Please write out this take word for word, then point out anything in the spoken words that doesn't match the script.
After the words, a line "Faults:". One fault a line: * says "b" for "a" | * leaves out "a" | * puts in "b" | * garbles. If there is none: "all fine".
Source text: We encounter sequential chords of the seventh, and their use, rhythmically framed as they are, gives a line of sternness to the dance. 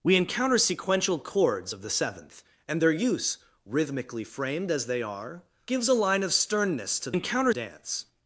We encounter sequential chords of the seventh, and their use, rhythmically framed as they are, gives a line of sternness to encounter dance.
Faults:
* says "encounter" for "the"